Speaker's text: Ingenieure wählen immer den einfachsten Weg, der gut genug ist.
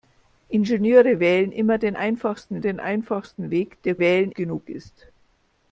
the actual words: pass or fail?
fail